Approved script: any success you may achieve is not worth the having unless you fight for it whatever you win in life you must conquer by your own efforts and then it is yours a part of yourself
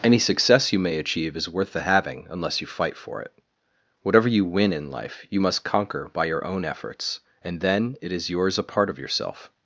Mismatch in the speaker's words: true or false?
true